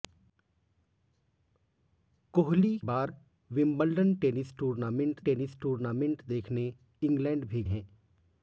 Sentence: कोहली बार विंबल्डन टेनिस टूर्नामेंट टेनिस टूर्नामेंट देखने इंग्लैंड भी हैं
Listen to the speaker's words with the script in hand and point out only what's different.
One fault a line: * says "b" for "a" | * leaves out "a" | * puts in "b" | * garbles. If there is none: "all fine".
all fine